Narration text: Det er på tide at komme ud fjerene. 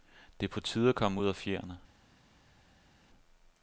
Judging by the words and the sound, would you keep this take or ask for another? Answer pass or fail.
fail